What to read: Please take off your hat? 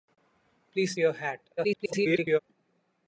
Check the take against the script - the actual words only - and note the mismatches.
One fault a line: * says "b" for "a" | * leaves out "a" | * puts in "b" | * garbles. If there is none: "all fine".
* leaves out "take off"
* garbles